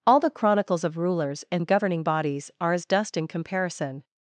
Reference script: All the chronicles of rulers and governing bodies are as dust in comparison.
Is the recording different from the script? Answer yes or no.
no